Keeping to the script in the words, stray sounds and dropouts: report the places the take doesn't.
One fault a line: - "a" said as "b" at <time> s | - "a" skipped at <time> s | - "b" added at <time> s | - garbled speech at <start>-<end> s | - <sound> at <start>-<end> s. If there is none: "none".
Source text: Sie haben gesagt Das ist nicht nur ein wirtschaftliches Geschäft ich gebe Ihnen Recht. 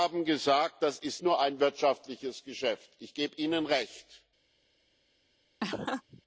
- "nicht" skipped at 1.2 s
- laugh at 5.6-6.2 s